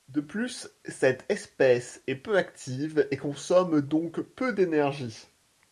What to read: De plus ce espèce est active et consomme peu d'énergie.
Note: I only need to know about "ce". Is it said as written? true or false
false